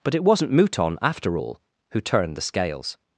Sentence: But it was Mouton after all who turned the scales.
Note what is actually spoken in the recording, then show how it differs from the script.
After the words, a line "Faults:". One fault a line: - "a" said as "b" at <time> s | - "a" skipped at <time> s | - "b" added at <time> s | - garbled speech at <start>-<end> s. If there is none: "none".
But it wasn't Mouton after all who turned the scales.
Faults:
- "was" said as "wasn't" at 0.2 s